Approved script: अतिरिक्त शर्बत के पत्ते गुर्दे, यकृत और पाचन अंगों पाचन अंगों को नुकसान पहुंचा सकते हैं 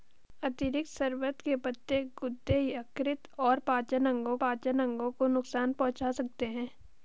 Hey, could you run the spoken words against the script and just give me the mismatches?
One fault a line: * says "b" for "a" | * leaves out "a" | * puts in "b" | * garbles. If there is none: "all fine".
all fine